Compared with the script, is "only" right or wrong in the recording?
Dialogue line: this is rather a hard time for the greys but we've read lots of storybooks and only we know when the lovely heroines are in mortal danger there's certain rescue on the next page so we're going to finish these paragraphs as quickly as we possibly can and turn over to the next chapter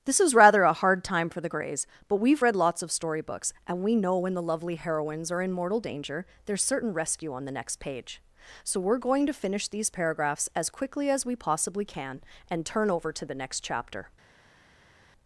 wrong